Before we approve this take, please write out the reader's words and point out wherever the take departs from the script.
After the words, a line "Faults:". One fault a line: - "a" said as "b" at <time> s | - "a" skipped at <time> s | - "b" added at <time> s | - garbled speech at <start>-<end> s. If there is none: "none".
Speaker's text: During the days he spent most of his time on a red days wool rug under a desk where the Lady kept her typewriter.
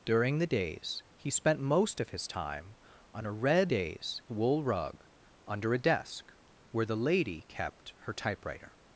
During the days he spent most of his time on a red days wool rug under a desk where the Lady kept her typewriter.
Faults:
none